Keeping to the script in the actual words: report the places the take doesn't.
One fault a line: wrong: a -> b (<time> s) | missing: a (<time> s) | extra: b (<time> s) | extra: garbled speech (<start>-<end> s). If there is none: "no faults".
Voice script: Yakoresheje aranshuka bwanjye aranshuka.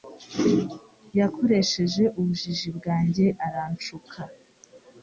wrong: aranshuka -> ubujiji (2.2 s)